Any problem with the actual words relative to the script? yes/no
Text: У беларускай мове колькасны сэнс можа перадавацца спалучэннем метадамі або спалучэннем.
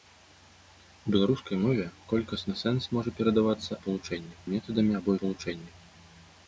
no